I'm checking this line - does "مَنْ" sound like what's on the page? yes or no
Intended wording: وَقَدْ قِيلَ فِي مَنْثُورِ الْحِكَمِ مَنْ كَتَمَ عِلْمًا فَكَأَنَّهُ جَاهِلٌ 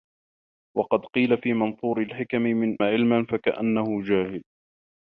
no